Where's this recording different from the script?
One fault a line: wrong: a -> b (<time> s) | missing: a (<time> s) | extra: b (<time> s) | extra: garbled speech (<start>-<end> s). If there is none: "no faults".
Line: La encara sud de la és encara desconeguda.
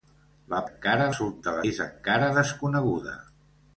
no faults